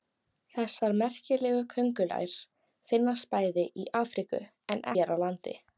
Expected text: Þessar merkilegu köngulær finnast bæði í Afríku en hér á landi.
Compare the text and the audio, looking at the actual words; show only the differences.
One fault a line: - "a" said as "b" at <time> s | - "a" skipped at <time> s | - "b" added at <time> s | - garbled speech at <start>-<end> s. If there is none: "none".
none